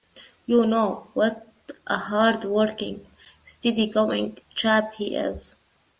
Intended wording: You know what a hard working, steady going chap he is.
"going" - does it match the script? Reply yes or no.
yes